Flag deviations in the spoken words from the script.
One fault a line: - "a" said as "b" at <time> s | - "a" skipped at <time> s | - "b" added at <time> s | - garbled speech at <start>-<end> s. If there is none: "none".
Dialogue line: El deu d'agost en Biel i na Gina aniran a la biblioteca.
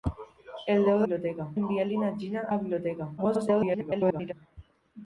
- "d'agost" said as "biblioteca" at 1.1 s
- "aniran" skipped at 2.5 s
- garbled speech at 3.2-4.3 s